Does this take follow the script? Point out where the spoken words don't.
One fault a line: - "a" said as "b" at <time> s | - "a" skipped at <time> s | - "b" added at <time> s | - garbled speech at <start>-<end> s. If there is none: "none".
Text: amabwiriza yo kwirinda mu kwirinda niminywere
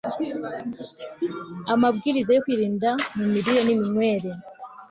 - "kwirinda" said as "mirire" at 3.3 s